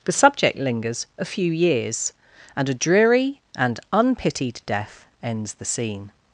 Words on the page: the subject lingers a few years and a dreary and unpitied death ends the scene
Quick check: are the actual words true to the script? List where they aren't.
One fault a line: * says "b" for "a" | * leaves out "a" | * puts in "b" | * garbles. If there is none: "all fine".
all fine